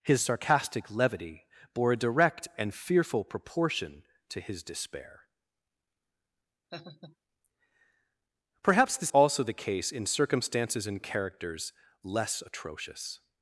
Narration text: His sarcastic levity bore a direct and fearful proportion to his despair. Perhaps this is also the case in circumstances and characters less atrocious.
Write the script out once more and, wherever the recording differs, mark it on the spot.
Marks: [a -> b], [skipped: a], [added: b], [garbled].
His sarcastic levity bore a direct and fearful proportion to his despair. Perhaps this [skipped: is] also the case in circumstances and characters less atrocious.